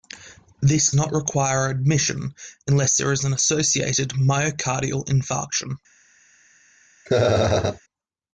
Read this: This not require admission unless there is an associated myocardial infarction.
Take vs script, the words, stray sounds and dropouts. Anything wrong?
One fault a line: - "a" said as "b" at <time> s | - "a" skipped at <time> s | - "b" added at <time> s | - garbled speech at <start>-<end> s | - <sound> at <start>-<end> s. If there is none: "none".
- laugh at 7.1-7.8 s